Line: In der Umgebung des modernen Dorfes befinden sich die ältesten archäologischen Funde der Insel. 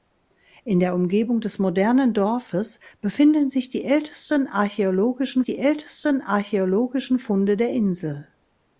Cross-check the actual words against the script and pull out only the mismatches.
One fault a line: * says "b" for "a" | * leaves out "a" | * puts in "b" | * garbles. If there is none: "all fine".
* puts in "die ältesten archäologischen"